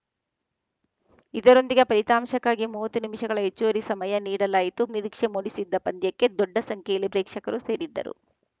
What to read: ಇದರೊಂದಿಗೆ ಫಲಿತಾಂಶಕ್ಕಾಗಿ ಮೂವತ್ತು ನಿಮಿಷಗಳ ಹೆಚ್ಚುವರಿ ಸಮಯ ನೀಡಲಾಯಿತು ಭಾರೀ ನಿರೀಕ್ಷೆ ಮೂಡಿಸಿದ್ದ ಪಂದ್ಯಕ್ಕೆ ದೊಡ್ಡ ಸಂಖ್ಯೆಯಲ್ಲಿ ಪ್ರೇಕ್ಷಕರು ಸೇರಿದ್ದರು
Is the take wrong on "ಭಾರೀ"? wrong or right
wrong